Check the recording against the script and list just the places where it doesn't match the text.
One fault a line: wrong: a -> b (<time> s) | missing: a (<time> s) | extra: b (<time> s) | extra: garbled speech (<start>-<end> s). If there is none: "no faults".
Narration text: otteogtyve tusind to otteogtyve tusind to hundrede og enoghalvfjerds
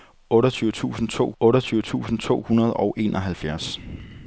no faults